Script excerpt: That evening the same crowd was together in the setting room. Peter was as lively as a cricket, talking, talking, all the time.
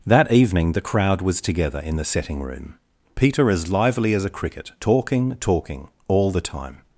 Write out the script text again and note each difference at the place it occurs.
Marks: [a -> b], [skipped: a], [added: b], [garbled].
That evening the [skipped: same] crowd was together in the setting room. Peter [skipped: was] as lively as a cricket, talking, talking, all the time.